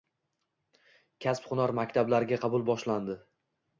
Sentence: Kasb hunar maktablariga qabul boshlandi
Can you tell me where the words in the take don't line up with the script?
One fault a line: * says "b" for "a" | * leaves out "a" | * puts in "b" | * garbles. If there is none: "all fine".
all fine